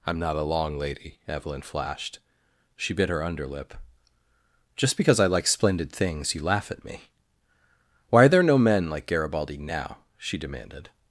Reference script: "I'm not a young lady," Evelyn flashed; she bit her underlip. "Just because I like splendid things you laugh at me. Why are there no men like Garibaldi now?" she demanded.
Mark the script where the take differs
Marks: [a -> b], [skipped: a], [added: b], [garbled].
"I'm not a [young -> long] lady," Evelyn flashed; she bit her underlip. "Just because I like splendid things you laugh at me. Why are there no men like Garibaldi now?" she demanded.